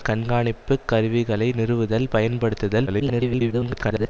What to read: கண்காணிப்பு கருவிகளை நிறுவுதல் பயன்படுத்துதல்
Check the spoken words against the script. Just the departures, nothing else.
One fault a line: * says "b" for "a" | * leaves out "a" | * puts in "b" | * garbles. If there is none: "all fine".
* garbles